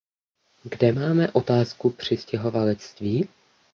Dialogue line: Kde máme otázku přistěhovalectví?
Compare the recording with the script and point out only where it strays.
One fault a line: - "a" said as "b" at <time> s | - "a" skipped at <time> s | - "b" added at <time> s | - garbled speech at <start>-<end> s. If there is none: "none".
none